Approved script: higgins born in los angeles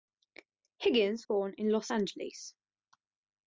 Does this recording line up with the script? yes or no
yes